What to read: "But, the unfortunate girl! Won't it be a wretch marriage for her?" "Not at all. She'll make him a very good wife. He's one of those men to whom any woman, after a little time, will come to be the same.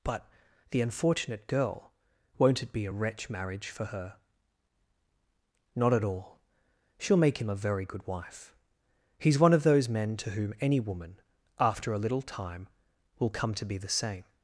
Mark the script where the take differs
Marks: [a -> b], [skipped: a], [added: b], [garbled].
"But, the unfortunate girl! Won't it be a wretch marriage for her?" "Not at all. She'll make him a very good wife. He's one of those men to whom any woman, after a little time, will come to be the same.